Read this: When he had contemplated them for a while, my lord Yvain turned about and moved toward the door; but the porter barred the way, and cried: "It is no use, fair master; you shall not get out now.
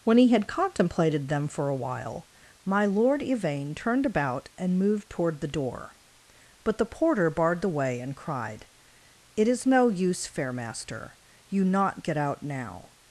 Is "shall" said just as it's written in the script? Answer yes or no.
no